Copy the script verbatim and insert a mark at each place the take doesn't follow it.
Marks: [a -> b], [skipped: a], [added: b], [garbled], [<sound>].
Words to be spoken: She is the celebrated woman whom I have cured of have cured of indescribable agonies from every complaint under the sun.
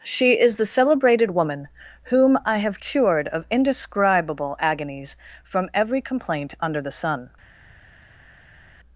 She is the celebrated woman whom I have cured of [skipped: have cured of] indescribable agonies from every complaint under the sun.